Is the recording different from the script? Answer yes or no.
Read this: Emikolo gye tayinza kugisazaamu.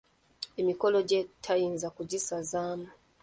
no